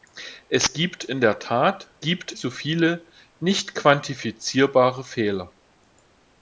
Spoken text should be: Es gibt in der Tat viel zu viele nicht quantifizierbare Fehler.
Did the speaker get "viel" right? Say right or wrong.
wrong